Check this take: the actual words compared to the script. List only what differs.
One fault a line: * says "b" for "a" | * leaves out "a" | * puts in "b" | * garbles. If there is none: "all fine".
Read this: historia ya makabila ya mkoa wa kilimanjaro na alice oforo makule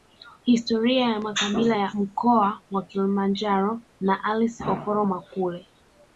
all fine